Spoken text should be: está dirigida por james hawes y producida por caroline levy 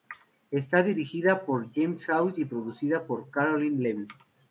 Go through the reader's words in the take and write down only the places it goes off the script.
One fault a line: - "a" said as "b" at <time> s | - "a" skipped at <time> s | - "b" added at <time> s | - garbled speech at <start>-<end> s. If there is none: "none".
none